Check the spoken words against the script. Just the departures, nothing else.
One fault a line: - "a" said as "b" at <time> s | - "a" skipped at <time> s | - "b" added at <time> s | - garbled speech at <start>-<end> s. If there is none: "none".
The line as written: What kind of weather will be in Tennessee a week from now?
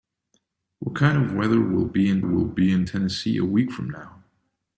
- "will be in" added at 2.2 s